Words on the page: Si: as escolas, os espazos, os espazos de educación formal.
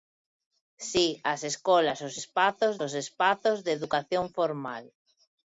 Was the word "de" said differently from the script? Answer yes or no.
no